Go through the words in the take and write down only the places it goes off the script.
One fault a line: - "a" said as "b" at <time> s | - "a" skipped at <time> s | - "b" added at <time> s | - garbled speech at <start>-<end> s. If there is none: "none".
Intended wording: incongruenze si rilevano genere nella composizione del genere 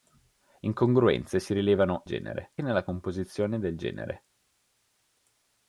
none